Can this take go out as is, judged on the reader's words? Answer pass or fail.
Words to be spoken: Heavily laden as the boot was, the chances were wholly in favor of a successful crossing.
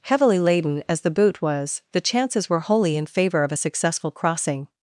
pass